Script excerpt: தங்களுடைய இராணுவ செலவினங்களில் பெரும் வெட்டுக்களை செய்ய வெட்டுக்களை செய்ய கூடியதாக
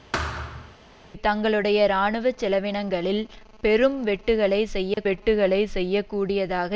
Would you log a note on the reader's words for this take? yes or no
no